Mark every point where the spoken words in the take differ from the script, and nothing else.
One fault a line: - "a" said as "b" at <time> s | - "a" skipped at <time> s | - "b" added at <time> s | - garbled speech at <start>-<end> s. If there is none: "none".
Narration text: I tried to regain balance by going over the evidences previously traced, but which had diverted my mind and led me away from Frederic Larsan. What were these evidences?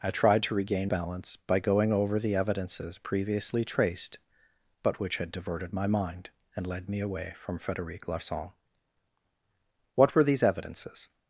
none